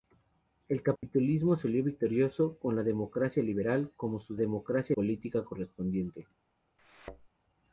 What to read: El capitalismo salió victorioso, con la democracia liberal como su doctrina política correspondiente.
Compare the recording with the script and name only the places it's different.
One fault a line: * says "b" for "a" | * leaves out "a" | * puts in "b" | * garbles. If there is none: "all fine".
* says "democracia" for "doctrina"